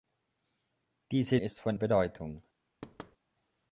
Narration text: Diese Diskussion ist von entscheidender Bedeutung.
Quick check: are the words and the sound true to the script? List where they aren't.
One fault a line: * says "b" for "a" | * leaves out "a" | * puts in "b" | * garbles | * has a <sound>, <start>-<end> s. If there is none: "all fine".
* leaves out "Diskussion"
* leaves out "entscheidender"
* has a thud, 2.8-3.2 s